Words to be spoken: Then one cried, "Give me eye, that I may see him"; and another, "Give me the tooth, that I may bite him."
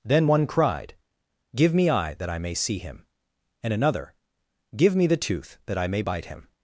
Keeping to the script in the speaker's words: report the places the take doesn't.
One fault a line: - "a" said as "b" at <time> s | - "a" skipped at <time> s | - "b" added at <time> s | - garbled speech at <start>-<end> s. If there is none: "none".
none